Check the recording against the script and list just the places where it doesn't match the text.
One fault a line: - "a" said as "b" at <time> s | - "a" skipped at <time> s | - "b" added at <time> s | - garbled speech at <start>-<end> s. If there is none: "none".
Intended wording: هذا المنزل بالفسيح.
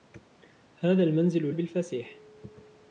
none